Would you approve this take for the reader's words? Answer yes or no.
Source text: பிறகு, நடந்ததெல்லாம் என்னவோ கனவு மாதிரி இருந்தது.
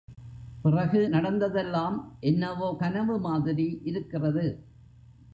no